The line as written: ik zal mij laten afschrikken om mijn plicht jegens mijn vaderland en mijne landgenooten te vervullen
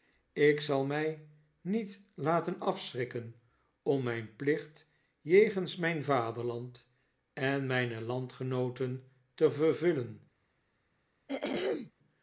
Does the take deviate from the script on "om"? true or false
false